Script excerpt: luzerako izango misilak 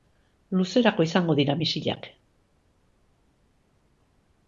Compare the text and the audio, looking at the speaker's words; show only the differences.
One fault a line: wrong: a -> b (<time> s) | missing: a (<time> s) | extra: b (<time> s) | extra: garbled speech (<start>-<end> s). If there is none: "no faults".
extra: dira (1.4 s)